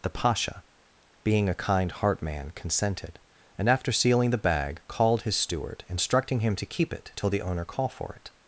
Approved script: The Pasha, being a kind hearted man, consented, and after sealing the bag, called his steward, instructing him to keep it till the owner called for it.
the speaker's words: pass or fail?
fail